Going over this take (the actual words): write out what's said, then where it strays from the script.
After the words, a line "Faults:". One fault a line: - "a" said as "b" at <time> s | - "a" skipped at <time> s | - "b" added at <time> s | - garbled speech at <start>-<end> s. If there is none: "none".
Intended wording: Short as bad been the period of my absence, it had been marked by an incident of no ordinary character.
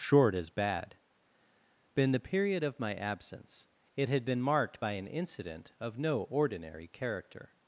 Short as bad been the period of my absence, it had been marked by an incident of no ordinary character.
Faults:
none